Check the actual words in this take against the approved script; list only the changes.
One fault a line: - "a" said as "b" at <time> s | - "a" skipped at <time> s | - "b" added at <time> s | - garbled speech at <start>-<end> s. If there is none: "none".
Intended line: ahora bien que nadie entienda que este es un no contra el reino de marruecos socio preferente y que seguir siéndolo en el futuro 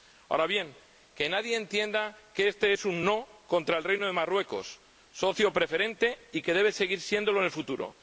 - "debe" added at 6.5 s